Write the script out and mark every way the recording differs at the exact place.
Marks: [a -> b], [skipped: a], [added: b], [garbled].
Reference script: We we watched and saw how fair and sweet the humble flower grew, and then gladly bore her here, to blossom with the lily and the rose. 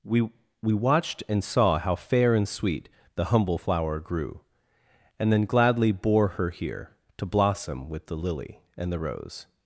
We we watched and saw how fair and sweet the humble flower grew, and then gladly bore her here, to blossom with the lily and the rose.